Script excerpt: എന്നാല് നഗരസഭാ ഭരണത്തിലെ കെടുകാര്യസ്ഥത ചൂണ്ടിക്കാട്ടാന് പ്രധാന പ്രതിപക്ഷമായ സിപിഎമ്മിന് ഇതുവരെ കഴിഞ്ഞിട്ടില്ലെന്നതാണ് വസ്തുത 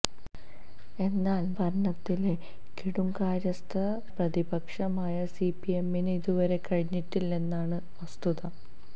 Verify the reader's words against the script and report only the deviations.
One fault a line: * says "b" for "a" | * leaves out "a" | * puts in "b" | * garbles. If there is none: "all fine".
* leaves out "നഗരസഭാ"
* leaves out "ചൂണ്ടിക്കാട്ടാന് പ്രധാന"